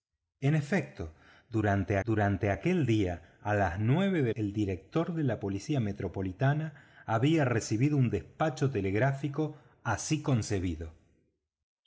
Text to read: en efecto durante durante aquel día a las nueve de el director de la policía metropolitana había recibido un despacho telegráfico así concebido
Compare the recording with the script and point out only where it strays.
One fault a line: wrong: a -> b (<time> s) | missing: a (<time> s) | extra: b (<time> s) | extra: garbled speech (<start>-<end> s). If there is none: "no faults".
no faults